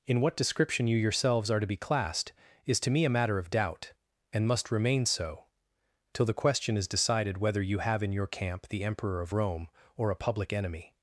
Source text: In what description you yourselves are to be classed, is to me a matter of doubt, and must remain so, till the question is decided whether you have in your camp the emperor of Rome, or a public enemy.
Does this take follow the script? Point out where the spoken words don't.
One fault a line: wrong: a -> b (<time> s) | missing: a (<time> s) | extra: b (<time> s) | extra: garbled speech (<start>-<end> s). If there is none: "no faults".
no faults